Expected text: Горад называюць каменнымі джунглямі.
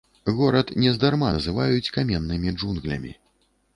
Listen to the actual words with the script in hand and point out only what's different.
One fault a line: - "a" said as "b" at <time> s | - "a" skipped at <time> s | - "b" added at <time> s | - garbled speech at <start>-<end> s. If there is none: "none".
- "нездарма" added at 0.8 s